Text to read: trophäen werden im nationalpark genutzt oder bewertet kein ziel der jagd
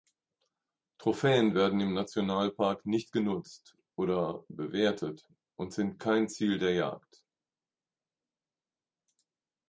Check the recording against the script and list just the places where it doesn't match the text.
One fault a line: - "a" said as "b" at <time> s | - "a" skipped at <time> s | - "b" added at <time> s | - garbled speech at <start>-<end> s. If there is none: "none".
- "nicht" added at 2.9 s
- "und sind" added at 5.6 s